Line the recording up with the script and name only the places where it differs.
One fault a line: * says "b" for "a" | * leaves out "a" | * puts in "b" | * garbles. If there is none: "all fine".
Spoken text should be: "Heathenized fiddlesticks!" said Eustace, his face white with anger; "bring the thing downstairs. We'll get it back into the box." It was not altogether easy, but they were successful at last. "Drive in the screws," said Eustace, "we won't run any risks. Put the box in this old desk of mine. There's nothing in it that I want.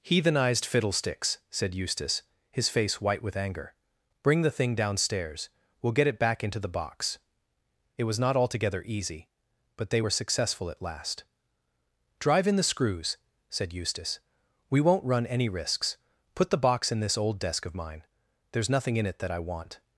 all fine